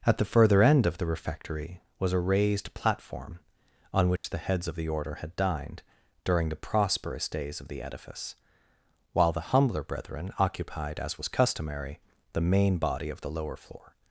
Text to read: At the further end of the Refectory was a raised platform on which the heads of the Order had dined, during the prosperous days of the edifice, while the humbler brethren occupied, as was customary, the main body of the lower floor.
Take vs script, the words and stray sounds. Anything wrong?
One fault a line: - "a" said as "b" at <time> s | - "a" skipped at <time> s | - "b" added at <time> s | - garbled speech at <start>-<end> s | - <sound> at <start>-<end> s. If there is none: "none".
- dropout at 4.2-4.2 s